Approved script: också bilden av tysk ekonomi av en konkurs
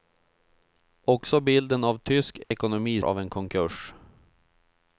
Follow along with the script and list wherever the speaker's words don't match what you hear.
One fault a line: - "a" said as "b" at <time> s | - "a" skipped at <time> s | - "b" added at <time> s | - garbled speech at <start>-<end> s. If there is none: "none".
none